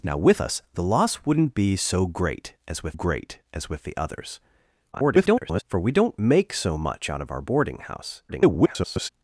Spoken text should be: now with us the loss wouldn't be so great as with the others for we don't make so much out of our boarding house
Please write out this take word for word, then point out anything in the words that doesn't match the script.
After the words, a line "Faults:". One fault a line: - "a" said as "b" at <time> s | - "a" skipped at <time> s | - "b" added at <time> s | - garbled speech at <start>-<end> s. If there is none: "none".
now with us the loss wouldn't be so great as with great as with the others [garbled] for we don't make so much out of our boarding house [garbled]
Faults:
- "great as with" added at 2.9 s
- garbled speech at 4.9-5.6 s
- garbled speech at 8.3-9.1 s